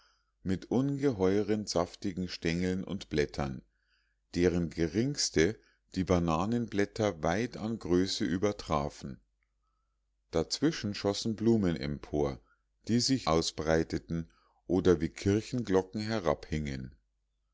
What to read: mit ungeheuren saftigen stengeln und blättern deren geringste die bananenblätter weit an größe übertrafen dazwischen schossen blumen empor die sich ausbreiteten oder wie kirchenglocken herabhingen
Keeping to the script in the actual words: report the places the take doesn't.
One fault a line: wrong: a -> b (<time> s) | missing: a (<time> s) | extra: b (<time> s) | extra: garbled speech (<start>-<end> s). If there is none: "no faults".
no faults